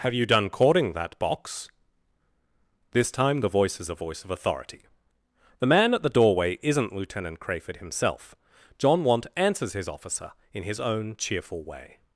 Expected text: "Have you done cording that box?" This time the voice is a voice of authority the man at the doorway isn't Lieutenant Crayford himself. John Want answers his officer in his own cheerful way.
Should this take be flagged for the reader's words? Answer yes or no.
no